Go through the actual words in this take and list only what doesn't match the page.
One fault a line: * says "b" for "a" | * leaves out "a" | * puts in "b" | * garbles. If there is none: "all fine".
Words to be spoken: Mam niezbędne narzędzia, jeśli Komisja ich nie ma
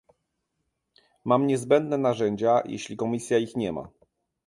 all fine